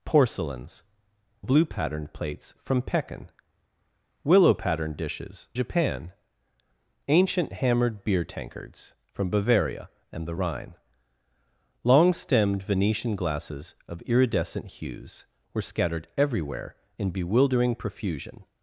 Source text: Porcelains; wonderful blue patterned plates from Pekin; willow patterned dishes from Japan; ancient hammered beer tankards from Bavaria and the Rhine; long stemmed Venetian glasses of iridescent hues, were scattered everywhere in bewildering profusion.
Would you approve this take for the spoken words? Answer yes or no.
no